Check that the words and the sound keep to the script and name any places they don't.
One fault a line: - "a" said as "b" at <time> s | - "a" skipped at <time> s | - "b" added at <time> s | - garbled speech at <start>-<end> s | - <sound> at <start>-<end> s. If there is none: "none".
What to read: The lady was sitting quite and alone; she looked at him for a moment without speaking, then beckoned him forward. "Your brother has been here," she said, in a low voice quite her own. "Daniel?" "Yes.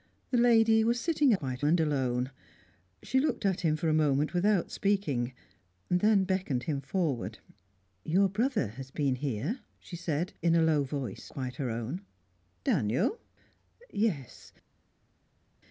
none